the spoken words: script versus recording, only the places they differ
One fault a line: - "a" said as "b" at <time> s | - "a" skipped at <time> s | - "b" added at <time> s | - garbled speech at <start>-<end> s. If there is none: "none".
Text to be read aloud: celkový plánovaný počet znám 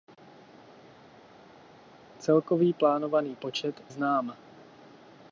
none